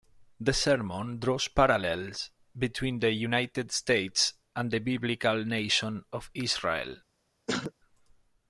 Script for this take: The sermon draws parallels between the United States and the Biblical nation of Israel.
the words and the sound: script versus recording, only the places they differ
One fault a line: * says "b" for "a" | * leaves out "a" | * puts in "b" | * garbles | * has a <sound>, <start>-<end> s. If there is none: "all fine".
* has a throat clearing, 7.5-7.7 s